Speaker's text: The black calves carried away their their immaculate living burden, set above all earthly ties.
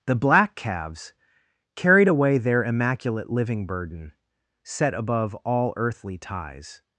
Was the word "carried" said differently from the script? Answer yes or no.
no